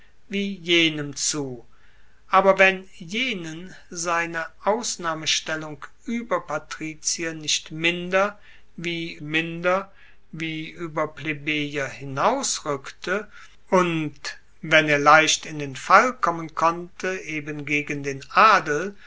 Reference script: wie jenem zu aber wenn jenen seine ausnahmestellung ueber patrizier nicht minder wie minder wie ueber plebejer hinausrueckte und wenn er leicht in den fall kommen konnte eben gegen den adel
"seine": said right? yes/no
yes